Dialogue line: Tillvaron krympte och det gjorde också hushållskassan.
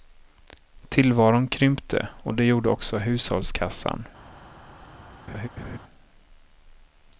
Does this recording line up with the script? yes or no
yes